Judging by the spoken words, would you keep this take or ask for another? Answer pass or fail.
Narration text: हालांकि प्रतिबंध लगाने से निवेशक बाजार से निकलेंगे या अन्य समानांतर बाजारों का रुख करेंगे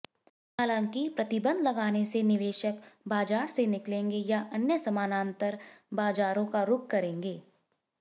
pass